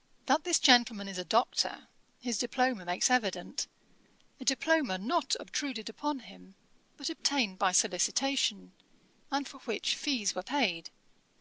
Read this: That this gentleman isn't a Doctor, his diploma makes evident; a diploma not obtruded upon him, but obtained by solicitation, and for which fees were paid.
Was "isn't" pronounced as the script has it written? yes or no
no